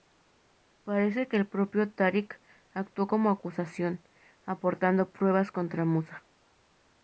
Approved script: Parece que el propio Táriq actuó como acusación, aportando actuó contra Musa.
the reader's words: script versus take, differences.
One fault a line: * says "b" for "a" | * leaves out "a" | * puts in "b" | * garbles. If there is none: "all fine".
* says "pruebas" for "actuó"